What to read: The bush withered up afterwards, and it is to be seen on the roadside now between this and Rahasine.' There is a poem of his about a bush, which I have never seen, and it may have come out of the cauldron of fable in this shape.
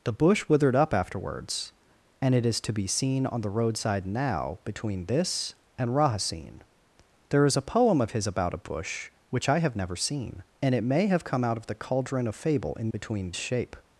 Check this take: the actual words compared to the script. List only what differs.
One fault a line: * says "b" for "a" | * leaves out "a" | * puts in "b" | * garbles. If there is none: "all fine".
* says "between" for "this"